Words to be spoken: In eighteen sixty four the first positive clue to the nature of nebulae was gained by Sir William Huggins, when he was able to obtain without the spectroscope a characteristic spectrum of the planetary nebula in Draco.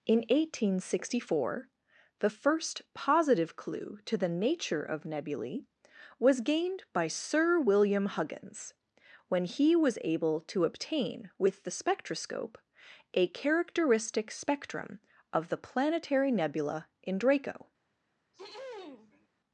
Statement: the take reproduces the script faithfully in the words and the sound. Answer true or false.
false